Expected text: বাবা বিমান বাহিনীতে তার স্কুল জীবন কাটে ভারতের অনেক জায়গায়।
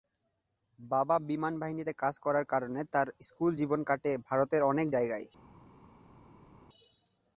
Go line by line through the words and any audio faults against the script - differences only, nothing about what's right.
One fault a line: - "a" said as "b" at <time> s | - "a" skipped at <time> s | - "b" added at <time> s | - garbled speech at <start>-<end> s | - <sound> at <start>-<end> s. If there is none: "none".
- "কাজ করার কারণে" added at 1.9 s